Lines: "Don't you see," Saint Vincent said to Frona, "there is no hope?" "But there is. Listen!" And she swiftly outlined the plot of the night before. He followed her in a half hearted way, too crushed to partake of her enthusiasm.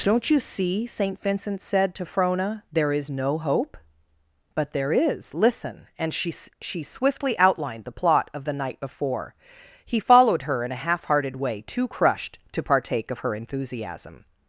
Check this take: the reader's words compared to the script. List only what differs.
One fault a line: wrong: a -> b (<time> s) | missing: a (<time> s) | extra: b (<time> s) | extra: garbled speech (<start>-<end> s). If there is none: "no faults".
extra: she (6.6 s)